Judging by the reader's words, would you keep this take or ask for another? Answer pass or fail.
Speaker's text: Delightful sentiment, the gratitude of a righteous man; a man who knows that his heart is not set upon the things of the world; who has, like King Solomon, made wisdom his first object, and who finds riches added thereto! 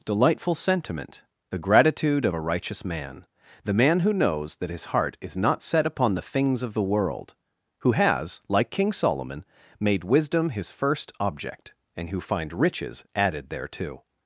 fail